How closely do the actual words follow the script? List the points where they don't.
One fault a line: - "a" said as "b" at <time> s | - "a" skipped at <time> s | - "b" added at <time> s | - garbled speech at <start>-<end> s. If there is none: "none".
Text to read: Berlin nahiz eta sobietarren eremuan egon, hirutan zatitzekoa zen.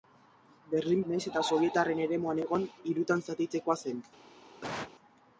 none